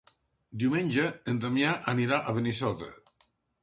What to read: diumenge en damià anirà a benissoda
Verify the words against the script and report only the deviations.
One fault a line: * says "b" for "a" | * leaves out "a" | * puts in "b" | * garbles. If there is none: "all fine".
all fine